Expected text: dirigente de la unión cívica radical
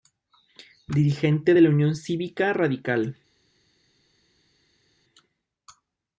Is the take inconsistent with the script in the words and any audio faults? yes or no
no